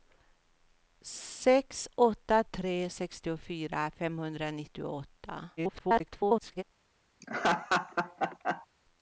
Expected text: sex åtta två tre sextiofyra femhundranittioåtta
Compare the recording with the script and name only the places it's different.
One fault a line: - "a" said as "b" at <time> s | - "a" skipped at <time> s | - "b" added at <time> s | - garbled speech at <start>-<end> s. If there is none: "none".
- "två" skipped at 2.4 s
- garbled speech at 5.6-6.6 s